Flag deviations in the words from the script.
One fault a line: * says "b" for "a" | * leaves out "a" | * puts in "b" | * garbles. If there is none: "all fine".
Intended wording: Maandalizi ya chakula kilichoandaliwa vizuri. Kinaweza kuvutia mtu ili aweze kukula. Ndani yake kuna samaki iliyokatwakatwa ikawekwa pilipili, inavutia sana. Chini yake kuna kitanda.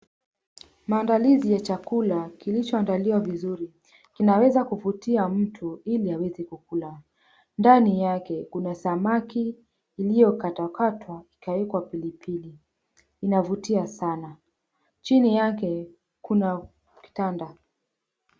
all fine